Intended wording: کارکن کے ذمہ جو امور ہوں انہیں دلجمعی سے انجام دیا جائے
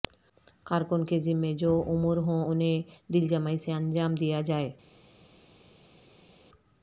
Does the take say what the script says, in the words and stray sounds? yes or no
yes